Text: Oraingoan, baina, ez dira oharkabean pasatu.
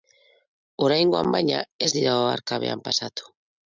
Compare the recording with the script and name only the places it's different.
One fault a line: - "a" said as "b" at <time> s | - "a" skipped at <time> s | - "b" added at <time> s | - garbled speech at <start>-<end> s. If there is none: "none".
none